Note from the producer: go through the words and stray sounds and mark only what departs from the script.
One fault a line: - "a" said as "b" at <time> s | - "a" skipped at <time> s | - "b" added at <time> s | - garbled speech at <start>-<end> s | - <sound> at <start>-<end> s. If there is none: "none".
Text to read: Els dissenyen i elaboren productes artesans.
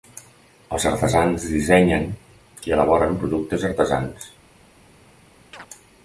- "artesans" added at 0.9 s
- chirp at 5.5-5.7 s